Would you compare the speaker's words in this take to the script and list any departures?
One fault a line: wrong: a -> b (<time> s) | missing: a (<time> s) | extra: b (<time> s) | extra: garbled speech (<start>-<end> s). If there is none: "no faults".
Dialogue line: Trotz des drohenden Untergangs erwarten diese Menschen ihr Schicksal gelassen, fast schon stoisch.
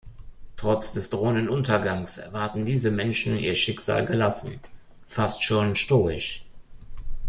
no faults